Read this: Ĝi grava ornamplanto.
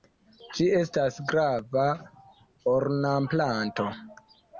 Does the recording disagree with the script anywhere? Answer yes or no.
yes